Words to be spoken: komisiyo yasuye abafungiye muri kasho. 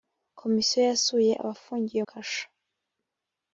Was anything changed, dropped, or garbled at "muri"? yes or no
yes